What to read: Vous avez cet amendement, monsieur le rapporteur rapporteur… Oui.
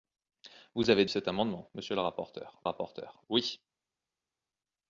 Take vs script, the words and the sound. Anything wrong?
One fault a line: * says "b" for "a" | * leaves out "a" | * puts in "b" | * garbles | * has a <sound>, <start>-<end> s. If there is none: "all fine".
all fine